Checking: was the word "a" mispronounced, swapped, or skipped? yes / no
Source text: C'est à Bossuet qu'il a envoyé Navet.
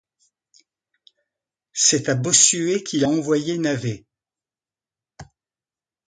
yes